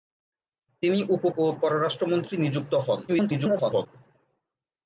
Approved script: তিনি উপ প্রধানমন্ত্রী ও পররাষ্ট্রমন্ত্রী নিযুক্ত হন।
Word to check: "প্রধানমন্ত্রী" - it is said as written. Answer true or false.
false